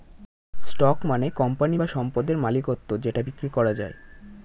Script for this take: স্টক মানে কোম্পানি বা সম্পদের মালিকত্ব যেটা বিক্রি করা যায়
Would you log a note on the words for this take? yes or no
no